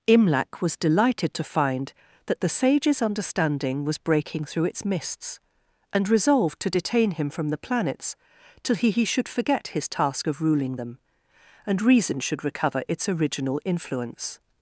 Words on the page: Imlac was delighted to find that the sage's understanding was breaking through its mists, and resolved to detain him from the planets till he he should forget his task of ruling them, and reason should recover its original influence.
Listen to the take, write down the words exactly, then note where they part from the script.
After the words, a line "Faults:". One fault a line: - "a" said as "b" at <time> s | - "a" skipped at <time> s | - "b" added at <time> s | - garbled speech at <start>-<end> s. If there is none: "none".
Imlac was delighted to find that the sage's understanding was breaking through its mists, and resolved to detain him from the planets till he he should forget his task of ruling them, and reason should recover its original influence.
Faults:
none